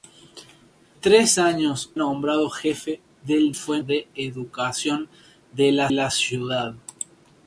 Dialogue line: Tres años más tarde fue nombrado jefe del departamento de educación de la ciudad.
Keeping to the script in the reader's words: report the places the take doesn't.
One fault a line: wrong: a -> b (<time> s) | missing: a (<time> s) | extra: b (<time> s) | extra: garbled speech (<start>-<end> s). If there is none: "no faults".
missing: más tarde fue (1.9 s)
wrong: departamento -> fue (3.5 s)
extra: la (5.9 s)